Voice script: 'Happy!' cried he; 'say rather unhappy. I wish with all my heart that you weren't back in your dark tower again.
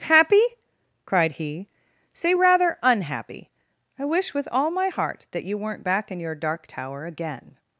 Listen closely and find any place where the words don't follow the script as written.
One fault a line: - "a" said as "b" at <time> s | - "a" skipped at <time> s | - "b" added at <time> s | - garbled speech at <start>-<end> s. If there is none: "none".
none